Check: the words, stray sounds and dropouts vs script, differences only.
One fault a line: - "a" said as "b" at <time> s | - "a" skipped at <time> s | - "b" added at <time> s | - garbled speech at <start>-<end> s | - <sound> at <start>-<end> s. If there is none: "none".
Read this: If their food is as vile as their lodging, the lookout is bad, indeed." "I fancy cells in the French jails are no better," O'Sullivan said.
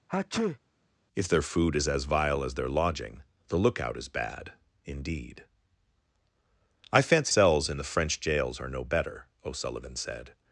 - sneeze at 0.1-0.6 s